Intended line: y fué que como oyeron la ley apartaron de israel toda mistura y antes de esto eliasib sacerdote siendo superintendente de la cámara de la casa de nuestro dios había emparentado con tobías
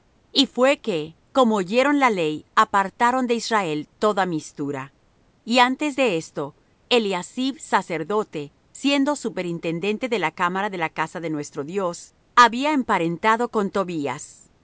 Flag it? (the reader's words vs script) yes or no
no